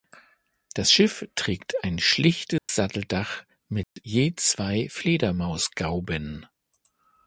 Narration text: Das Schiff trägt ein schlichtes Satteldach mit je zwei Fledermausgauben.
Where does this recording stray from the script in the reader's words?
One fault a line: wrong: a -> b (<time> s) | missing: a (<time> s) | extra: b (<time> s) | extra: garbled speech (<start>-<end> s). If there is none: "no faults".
no faults